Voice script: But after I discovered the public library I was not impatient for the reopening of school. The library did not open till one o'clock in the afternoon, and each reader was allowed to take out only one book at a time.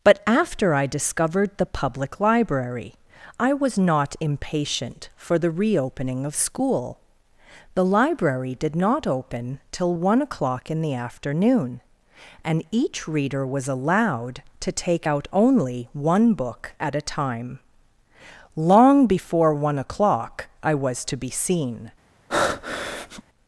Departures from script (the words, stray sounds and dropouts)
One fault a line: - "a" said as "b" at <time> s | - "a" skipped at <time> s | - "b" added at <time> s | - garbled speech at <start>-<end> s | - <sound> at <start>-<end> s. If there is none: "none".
- "Long before one o'clock I was to be seen" added at 18.5 s
- breath at 22.3-23.2 s